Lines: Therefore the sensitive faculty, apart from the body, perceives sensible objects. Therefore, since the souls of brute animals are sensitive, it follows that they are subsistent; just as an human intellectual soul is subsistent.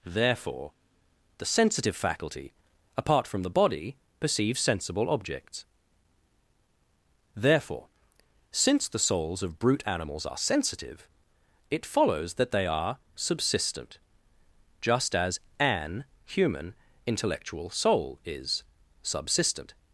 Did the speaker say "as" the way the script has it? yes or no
yes